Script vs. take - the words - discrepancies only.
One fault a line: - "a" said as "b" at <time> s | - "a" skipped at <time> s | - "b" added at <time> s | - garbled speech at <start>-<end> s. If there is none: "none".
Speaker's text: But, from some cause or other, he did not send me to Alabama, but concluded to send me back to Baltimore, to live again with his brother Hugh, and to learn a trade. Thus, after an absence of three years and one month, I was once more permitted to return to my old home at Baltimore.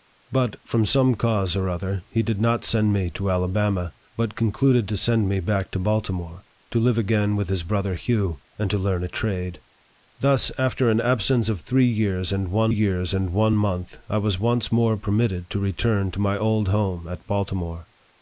- "years and one" added at 12.7 s